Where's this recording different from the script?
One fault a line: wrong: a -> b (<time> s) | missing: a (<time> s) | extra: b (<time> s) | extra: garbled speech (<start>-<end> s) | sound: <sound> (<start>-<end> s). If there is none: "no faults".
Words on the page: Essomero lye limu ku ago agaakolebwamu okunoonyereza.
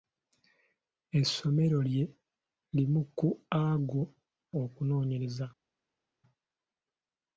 missing: agaakolebwamu (4.0 s)